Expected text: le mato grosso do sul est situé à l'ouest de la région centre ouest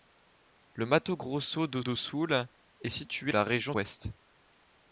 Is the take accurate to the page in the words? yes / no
no